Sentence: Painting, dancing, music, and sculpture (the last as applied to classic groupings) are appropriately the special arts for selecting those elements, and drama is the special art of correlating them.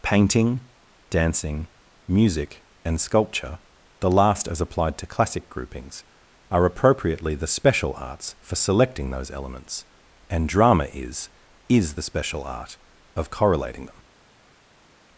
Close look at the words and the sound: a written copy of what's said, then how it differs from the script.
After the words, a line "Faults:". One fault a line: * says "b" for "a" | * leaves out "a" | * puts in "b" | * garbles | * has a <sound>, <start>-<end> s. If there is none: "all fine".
Painting, dancing, music, and sculpture (the last as applied to classic groupings) are appropriately the special arts for selecting those elements, and drama is is the special art of correlating them.
Faults:
* puts in "is"